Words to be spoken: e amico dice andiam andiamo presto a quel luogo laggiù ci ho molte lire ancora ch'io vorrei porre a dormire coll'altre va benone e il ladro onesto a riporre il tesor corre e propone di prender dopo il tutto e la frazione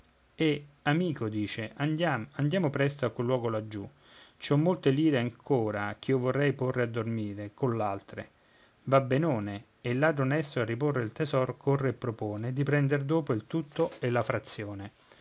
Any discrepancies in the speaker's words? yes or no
no